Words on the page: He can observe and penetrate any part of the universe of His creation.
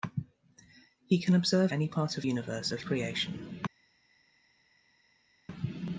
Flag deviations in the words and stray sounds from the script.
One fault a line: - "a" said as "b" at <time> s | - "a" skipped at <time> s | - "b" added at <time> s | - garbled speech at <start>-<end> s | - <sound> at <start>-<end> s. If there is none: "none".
- "and penetrate" skipped at 1.7 s
- "the" skipped at 2.3 s
- "His" skipped at 2.8 s